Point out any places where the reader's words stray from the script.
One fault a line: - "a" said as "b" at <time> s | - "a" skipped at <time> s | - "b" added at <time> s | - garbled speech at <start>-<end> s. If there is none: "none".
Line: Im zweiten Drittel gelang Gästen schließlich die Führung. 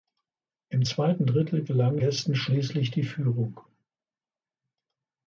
none